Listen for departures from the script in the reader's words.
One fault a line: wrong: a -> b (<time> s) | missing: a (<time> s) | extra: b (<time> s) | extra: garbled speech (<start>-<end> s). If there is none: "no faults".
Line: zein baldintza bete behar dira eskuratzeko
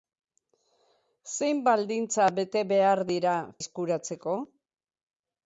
no faults